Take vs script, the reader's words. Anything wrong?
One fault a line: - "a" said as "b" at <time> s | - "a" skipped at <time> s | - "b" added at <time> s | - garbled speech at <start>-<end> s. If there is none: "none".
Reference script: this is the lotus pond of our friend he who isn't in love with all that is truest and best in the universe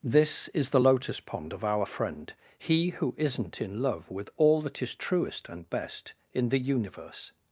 none